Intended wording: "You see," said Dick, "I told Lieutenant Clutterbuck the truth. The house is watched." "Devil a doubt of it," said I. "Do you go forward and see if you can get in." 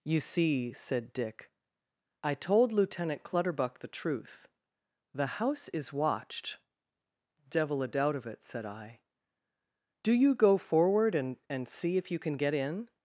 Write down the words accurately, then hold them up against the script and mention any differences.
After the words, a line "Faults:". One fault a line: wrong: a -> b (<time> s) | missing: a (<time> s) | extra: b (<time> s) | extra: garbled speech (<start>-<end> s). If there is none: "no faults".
"You see," said Dick, "I told Lieutenant Clutterbuck the truth. The house is watched." "Devil a doubt of it," said I. "Do you go forward and and see if you can get in."
Faults:
extra: and (11.5 s)